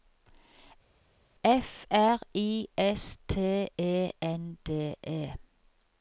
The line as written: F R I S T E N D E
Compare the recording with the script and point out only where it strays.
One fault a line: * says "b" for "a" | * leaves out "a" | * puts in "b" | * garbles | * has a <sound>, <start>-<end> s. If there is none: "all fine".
all fine